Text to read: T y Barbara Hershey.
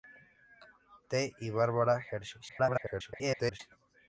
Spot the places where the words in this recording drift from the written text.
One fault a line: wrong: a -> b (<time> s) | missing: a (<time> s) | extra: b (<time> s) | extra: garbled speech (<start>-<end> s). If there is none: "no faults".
extra: garbled speech (2.5-3.6 s)